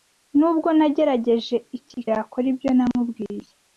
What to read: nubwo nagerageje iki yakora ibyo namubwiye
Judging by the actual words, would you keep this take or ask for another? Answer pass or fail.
pass